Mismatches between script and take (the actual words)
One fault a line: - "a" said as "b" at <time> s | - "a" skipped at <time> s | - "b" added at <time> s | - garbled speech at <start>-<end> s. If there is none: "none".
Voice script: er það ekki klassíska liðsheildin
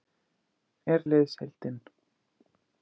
- "það ekki klassíska" skipped at 1.0 s